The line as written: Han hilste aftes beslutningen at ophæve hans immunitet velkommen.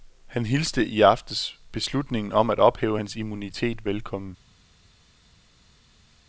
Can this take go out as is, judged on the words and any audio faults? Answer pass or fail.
fail